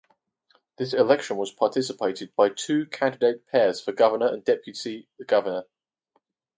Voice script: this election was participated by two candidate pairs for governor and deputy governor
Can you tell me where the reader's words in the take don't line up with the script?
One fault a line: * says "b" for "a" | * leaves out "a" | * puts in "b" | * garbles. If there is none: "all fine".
all fine